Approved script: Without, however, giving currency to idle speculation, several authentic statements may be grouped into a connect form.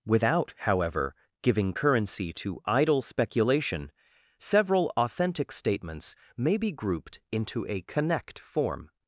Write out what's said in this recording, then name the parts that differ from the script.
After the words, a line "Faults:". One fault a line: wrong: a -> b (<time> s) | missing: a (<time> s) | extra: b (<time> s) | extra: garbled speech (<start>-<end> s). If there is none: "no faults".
Without, however, giving currency to idle speculation, several authentic statements may be grouped into a connect form.
Faults:
no faults